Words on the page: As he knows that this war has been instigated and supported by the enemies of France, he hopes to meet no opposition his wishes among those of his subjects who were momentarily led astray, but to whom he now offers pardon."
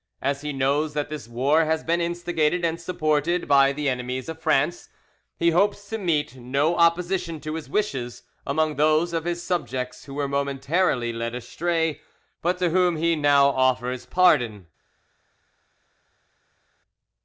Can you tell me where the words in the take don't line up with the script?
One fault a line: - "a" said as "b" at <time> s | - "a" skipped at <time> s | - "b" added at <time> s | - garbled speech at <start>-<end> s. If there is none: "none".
- "to" added at 7.4 s